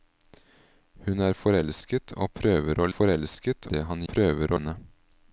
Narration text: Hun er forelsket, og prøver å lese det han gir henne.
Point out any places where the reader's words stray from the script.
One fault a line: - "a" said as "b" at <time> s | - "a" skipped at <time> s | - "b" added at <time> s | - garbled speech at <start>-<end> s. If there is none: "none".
- "lese" said as "forelsket" at 2.9 s
- "gir" said as "prøver" at 4.1 s